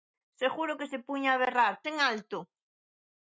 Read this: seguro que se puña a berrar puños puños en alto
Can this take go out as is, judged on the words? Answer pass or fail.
fail